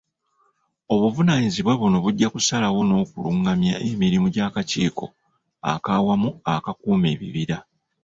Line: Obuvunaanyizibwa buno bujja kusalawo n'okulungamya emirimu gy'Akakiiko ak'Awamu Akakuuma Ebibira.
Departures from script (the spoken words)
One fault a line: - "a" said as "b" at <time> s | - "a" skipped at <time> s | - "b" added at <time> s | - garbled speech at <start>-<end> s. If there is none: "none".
none